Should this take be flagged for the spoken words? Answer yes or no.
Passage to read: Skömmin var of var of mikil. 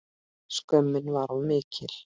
yes